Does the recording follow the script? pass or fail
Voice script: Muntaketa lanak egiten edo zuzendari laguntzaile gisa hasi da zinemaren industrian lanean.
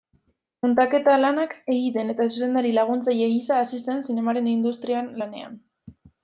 fail